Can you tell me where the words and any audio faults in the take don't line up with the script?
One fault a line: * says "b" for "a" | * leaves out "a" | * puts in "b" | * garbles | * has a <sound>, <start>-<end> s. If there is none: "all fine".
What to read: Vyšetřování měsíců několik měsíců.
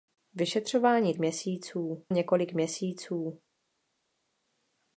all fine